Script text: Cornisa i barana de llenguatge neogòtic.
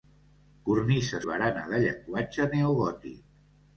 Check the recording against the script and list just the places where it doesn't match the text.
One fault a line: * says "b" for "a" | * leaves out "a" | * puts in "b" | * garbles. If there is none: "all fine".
all fine